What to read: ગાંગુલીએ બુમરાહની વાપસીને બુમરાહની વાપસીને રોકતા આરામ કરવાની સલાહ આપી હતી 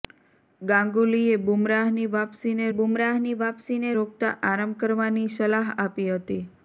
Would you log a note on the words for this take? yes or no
no